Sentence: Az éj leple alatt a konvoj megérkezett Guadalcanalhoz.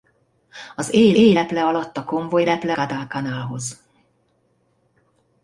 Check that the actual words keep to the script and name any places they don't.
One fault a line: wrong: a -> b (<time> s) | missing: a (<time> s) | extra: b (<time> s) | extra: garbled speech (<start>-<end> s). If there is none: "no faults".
extra: éj (1.1 s)
wrong: megérkezett -> leple (2.4 s)